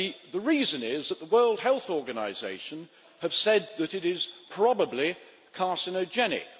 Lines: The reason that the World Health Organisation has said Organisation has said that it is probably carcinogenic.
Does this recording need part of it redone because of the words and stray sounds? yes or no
yes